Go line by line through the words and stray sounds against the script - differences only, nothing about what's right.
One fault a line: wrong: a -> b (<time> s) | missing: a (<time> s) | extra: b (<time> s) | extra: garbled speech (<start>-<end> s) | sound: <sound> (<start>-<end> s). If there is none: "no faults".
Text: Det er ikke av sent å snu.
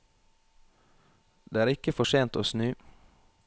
wrong: av -> for (1.9 s)